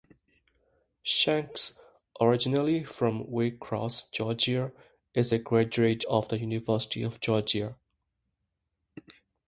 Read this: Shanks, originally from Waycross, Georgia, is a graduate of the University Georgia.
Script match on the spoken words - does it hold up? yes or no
no